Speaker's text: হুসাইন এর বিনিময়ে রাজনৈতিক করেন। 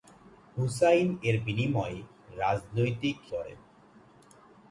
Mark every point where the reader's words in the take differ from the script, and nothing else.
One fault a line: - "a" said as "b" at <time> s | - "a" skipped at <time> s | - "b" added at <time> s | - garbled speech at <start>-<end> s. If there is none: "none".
none